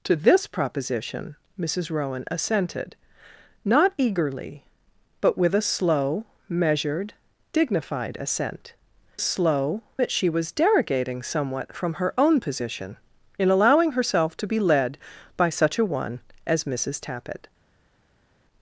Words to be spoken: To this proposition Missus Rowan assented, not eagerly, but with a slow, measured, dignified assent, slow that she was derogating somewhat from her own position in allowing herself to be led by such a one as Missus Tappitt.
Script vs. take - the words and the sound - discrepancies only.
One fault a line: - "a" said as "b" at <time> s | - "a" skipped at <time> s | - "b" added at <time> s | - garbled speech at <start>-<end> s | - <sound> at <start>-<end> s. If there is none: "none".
none